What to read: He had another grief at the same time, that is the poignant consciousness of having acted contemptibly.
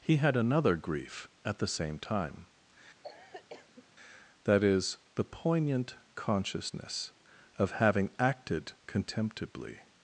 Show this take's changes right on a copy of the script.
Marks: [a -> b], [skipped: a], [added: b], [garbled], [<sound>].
He had another grief at the same time, [cough] that is the poignant consciousness of having acted contemptibly.